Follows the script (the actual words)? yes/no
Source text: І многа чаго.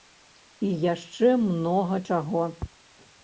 no